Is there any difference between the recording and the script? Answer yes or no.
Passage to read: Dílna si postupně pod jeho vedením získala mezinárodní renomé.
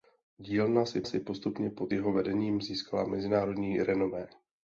yes